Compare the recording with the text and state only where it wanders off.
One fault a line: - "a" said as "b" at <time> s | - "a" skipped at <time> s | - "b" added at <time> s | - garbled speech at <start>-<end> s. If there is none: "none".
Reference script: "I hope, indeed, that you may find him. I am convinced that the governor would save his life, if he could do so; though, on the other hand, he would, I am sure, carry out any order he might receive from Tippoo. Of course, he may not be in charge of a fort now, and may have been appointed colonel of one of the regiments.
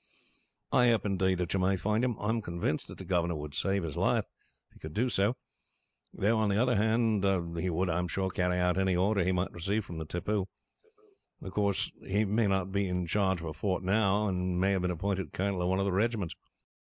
none